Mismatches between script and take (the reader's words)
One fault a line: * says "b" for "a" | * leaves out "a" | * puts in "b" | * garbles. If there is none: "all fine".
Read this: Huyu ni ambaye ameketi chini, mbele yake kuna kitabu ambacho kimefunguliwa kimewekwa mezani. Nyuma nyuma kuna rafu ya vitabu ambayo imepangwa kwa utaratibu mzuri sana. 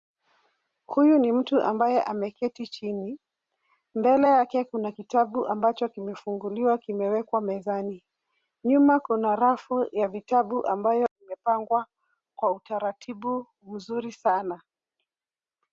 * puts in "mtu"
* leaves out "nyuma"